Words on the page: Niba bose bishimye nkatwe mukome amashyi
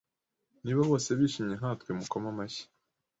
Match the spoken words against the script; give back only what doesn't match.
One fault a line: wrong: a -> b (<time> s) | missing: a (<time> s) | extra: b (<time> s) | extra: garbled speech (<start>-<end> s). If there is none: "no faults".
no faults